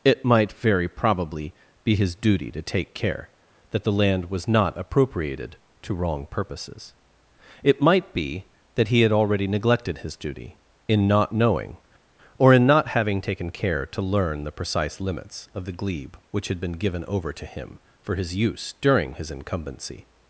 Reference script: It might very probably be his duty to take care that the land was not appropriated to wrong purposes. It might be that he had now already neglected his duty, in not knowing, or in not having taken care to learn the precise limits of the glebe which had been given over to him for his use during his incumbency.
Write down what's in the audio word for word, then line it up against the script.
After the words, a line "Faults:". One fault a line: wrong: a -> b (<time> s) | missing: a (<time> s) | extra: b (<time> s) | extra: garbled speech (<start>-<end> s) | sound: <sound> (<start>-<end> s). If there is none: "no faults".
It might very probably be his duty to take care that the land was not appropriated to wrong purposes. It might be that he had already neglected his duty, in not knowing, or in not having taken care to learn the precise limits of the glebe which had been given over to him for his use during his incumbency.
Faults:
missing: now (9.1 s)